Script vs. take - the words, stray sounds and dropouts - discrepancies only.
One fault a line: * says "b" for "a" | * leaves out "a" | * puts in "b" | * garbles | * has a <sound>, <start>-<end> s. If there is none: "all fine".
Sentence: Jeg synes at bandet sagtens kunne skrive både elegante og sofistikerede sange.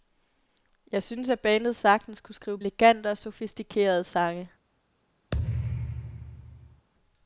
* leaves out "både"
* has a thud, 5.3-6.9 s